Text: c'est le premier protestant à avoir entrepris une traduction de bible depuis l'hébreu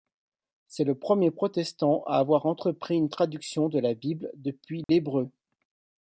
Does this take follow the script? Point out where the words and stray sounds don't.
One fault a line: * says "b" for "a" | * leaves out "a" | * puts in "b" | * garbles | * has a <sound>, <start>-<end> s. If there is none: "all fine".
* puts in "la"
* has a dropout, 4.8-4.9 s